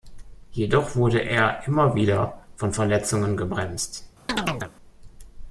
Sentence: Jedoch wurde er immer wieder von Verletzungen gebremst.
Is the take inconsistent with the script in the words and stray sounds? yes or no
yes